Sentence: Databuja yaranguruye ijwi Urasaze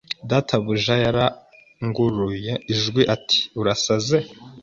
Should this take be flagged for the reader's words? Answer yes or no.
yes